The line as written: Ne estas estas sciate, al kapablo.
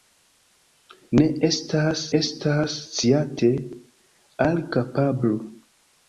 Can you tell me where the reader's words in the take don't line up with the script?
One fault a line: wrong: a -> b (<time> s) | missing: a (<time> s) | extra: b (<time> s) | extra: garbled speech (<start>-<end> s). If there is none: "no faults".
no faults